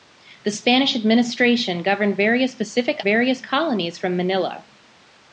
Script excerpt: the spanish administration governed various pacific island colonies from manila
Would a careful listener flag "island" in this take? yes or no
yes